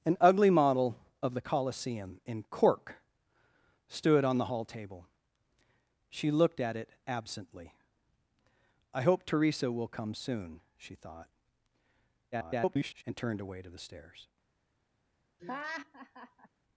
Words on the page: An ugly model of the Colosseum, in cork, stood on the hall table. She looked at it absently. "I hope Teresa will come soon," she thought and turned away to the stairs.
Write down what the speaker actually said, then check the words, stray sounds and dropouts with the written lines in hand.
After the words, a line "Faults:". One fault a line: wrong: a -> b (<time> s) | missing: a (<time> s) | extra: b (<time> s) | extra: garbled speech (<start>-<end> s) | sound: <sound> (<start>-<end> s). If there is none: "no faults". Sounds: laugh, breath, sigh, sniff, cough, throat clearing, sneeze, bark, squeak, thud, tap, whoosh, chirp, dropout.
An ugly model of the Colosseum, in cork, stood on the hall table. She looked at it absently. "I hope Teresa will come soon," she thought [garbled] and turned away to the stairs.
Faults:
extra: garbled speech (12.3-13.0 s)
sound: laugh (15.4-16.5 s)